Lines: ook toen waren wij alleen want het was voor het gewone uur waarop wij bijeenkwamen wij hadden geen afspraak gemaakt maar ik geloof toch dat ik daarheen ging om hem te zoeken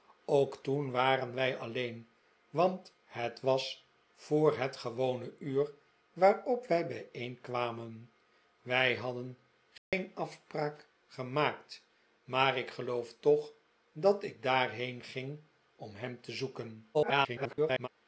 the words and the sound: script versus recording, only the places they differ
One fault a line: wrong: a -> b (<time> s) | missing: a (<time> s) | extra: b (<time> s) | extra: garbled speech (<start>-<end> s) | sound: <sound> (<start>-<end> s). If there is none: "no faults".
sound: dropout (9.8-9.9 s)
extra: garbled speech (16.9-17.9 s)